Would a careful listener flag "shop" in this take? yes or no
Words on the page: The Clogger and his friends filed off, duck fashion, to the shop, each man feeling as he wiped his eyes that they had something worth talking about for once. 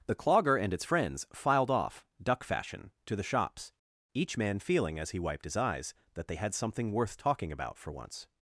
yes